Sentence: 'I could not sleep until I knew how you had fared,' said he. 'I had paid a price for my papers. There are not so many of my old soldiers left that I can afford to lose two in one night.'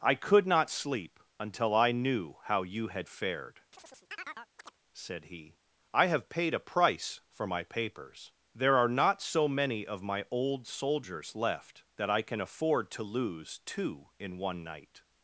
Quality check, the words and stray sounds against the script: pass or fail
fail